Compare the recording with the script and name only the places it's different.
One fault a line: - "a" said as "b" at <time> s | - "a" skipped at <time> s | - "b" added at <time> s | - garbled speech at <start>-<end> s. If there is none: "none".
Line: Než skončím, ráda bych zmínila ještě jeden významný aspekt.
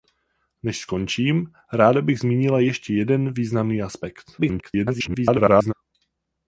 - garbled speech at 4.4-5.7 s